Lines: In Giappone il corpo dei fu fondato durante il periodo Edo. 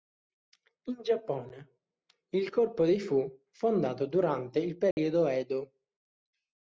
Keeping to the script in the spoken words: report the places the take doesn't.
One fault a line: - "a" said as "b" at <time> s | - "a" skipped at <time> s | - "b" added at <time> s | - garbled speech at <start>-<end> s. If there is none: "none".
none